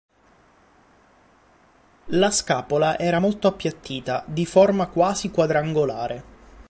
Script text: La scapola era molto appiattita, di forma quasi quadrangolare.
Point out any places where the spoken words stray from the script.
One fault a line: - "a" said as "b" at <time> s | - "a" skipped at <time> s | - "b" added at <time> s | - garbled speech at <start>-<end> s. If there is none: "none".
none